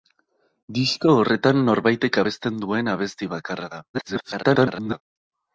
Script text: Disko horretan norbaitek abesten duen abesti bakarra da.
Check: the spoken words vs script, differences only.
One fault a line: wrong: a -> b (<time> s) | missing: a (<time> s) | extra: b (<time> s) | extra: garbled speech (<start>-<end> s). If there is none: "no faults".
extra: garbled speech (3.9-5.0 s)